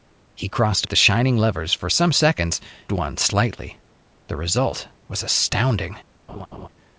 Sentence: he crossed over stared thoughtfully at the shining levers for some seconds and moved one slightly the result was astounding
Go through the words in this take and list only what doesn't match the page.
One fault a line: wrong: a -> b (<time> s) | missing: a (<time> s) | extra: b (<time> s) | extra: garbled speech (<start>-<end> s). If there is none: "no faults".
missing: over stared thoughtfully (0.9 s)
missing: and moved (2.6 s)